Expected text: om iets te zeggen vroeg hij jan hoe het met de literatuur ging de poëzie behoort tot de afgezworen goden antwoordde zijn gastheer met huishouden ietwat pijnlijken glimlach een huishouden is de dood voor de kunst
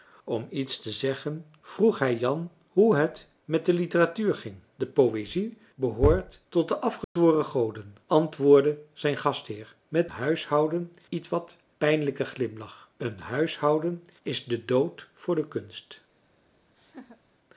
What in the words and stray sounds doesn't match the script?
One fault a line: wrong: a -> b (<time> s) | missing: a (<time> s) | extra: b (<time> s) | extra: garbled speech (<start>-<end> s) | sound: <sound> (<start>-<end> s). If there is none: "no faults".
sound: dropout (7.0-7.2 s)
sound: laugh (16.7-17.2 s)